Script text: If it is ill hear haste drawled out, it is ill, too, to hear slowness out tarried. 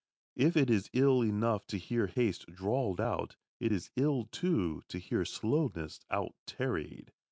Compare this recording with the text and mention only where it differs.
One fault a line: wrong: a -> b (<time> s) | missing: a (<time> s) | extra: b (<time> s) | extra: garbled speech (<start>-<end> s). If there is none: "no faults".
extra: enough to (1.2 s)